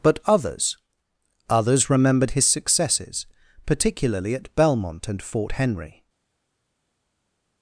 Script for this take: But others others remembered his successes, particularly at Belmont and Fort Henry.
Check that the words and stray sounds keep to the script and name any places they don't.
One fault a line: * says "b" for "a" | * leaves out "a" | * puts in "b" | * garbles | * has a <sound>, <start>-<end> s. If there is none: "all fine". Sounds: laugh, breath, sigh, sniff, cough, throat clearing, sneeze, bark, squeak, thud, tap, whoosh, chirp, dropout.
all fine